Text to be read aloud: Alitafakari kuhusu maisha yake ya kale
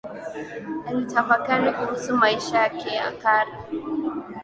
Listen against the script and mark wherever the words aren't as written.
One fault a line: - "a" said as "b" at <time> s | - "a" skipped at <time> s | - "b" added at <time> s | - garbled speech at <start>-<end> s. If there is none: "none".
none